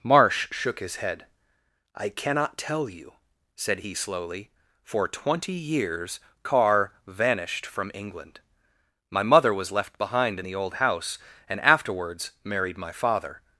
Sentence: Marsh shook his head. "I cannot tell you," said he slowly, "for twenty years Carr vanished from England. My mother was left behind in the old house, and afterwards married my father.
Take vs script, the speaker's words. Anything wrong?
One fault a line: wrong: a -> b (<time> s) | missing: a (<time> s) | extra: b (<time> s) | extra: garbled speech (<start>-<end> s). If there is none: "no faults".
no faults